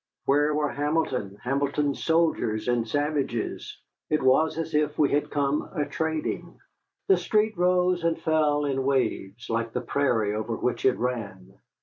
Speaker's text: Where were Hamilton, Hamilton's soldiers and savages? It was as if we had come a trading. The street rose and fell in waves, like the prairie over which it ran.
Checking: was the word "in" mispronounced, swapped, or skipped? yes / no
no